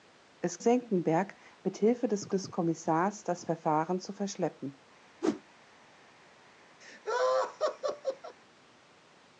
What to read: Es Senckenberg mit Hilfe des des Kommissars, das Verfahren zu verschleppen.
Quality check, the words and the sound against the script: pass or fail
fail